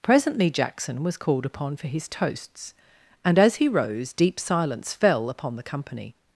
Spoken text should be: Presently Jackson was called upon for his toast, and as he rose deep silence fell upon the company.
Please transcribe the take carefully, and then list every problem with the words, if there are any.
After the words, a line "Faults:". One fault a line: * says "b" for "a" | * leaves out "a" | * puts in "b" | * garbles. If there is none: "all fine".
Presently Jackson was called upon for his toasts, and as he rose deep silence fell upon the company.
Faults:
* says "toasts" for "toast"